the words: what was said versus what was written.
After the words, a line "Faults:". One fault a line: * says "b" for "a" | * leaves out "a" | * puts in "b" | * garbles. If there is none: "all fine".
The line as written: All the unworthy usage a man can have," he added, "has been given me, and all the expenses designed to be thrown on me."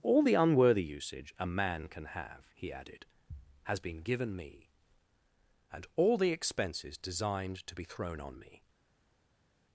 All the unworthy usage a man can have," he added, "has been given me, and all the expenses designed to be thrown on me."
Faults:
all fine